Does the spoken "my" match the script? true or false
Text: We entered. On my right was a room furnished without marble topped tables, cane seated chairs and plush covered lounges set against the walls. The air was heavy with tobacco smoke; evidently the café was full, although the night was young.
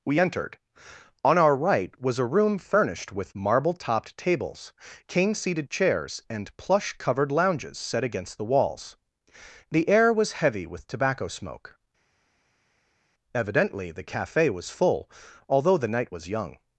false